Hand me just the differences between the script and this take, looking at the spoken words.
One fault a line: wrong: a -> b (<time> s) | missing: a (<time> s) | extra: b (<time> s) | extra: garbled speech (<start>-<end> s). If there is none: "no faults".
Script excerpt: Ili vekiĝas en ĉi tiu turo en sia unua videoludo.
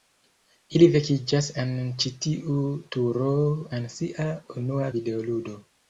no faults